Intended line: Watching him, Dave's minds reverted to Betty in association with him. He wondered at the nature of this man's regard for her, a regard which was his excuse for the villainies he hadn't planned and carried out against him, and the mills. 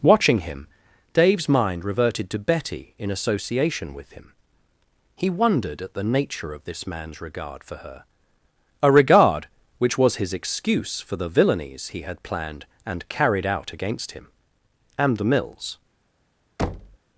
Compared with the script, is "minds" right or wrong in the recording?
wrong